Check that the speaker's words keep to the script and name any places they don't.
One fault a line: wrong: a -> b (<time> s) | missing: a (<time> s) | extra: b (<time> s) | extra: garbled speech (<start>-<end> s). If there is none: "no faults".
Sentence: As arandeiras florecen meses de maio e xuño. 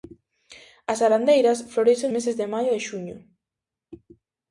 no faults